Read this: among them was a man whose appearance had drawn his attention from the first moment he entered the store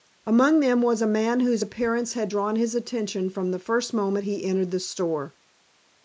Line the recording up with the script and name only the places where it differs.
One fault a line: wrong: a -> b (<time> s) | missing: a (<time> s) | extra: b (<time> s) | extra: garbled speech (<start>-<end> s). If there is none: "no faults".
no faults